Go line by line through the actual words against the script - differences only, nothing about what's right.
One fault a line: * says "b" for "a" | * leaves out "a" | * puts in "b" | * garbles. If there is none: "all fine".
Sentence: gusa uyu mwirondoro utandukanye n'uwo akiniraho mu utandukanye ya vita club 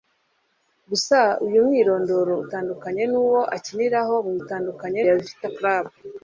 all fine